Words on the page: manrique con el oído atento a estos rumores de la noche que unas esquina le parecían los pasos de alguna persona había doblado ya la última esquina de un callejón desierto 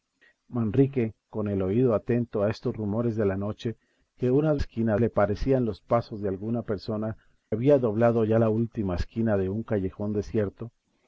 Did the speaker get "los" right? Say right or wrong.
right